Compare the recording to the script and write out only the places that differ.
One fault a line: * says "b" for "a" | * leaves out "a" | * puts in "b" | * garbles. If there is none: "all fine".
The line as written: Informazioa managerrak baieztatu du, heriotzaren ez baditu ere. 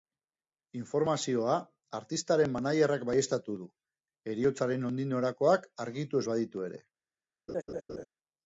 * puts in "artistaren"
* puts in "nondik norakoak argitu"